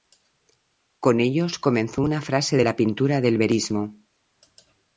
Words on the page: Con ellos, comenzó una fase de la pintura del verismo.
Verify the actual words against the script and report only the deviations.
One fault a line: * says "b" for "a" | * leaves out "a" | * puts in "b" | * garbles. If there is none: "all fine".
all fine